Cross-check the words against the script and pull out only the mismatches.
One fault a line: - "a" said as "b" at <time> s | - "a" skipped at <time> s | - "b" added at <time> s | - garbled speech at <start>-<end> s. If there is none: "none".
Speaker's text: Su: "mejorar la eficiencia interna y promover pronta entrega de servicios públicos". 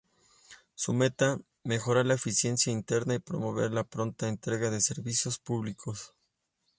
- "meta" added at 0.9 s
- "la" added at 3.7 s